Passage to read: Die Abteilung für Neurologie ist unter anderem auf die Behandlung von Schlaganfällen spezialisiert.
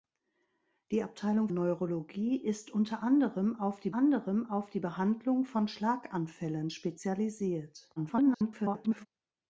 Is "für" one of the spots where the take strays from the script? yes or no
yes